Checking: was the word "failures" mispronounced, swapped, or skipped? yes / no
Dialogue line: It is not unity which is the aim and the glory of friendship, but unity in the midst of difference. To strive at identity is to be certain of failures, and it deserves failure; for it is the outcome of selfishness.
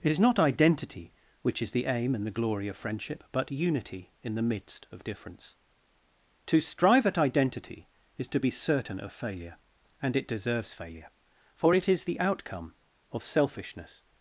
yes